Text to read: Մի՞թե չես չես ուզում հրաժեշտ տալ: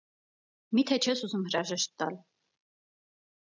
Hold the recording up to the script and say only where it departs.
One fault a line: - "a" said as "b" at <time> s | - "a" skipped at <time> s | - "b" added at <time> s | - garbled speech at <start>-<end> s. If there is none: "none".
- "չես" skipped at 1.2 s